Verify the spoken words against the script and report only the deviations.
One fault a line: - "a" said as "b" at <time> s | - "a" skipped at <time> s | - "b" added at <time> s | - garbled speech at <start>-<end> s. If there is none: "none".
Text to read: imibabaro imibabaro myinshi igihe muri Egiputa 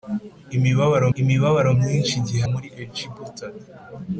none